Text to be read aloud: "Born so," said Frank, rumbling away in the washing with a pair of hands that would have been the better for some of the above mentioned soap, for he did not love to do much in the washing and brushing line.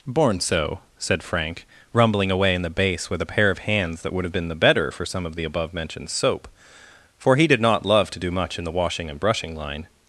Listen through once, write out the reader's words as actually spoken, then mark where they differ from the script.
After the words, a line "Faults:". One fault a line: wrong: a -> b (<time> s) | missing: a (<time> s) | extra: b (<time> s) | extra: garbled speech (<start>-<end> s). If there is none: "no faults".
"Born so," said Frank, rumbling away in the bass with a pair of hands that would have been the better for some of the above mentioned soap, for he did not love to do much in the washing and brushing line.
Faults:
wrong: washing -> bass (2.7 s)